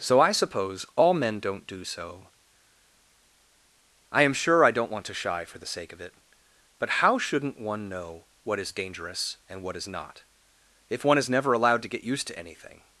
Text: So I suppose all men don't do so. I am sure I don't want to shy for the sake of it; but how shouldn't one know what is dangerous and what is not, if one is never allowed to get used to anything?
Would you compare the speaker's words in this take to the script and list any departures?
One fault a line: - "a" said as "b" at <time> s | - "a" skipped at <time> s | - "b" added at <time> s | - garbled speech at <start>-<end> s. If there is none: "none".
none